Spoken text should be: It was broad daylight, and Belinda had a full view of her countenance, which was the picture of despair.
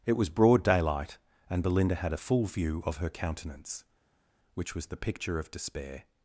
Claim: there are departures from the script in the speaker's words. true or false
false